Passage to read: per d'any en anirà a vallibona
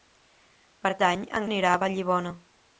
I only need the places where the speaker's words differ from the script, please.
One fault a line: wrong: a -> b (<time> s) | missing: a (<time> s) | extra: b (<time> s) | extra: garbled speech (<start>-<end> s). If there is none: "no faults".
no faults